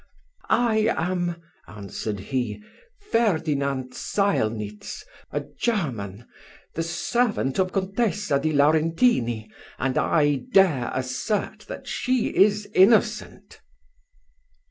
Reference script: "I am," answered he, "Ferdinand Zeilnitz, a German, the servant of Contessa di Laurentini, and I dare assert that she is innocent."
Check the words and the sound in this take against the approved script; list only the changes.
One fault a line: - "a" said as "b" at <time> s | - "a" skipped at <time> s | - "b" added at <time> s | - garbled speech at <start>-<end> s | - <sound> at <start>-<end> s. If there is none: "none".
none